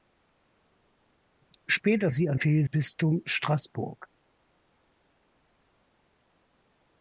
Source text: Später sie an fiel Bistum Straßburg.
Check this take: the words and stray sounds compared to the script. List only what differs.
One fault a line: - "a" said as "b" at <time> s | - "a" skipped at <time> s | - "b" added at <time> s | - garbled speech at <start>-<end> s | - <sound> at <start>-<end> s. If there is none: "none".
none